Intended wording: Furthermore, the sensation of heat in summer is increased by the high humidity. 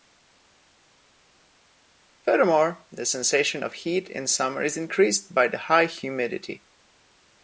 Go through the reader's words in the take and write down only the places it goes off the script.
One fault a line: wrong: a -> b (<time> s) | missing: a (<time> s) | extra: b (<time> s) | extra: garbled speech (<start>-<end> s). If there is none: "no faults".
no faults